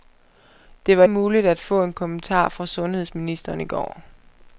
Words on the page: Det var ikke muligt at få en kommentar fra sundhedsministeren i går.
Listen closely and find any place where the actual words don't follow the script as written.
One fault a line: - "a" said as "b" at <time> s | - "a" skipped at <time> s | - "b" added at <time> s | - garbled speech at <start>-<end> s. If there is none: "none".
- "ikke" skipped at 1.0 s